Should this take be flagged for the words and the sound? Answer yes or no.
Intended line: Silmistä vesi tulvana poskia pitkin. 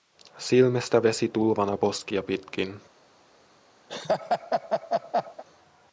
yes